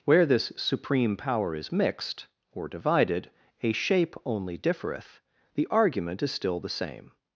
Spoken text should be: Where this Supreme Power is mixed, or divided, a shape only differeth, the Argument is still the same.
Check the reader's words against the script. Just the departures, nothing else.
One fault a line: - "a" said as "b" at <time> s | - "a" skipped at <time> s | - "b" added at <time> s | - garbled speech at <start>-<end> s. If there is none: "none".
none